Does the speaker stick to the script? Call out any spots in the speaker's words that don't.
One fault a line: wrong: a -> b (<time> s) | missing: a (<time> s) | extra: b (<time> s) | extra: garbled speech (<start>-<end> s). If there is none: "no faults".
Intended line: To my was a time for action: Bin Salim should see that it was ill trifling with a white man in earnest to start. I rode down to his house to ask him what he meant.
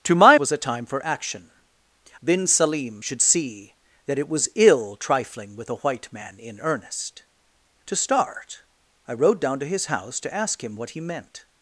no faults